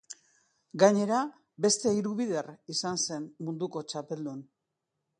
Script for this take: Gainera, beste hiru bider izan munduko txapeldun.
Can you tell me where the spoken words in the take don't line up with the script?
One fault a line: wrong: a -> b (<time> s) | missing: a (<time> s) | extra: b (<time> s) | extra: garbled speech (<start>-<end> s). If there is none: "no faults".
extra: zen (3.1 s)